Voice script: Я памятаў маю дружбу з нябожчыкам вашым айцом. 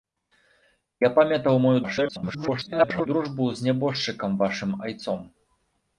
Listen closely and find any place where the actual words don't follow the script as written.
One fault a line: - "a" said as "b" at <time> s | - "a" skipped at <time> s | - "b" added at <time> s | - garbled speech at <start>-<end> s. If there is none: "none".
- garbled speech at 1.8-3.1 s